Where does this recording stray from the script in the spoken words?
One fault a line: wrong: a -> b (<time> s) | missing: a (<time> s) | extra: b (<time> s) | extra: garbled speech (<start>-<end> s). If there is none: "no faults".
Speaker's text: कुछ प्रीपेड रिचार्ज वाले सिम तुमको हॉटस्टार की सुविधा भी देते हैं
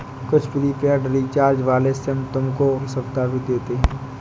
missing: हॉटस्टार (2.7 s)